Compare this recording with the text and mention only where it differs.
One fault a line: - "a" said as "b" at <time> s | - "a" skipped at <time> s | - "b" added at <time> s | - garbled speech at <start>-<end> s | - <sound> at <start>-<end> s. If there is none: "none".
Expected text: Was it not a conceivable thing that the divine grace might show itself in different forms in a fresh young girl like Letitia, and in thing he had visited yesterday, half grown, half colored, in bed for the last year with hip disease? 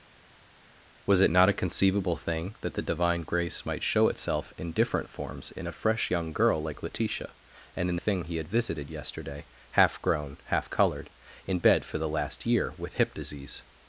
none